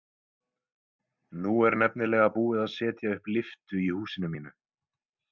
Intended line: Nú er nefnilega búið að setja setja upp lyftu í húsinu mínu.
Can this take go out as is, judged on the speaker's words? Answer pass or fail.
fail